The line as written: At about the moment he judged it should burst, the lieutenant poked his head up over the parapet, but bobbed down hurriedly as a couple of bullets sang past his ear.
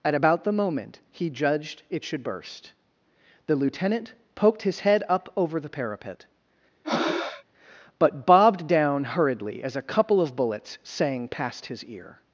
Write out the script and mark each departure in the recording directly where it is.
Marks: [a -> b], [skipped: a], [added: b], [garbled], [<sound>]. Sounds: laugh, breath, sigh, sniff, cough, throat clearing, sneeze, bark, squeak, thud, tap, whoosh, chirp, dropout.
At about the moment he judged it should burst, the lieutenant poked his head up over the parapet, [breath] but bobbed down hurriedly as a couple of bullets sang past his ear.